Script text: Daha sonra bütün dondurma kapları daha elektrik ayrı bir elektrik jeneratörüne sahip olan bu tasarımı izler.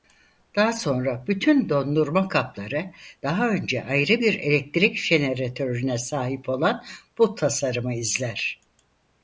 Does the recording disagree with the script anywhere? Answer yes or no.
yes